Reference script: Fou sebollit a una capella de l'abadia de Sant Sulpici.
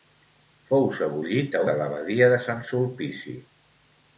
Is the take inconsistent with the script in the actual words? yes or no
yes